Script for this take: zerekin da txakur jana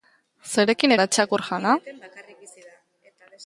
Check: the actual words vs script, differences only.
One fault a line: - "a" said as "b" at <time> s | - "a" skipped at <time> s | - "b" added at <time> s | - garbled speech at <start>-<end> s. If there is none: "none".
none